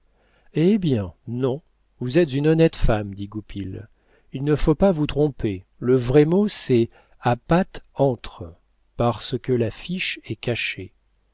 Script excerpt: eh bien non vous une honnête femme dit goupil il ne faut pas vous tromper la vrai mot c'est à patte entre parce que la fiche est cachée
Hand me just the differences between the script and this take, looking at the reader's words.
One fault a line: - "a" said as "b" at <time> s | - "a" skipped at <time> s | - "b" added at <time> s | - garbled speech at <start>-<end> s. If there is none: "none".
- "êtes" added at 2.2 s
- "la" said as "le" at 5.8 s